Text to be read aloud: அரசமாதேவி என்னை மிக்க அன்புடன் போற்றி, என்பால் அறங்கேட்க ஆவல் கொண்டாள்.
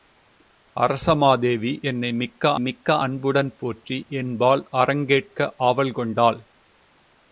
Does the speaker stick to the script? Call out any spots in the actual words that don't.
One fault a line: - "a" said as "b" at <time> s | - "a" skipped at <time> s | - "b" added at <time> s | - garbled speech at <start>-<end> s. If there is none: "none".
- "மிக்க" added at 2.6 s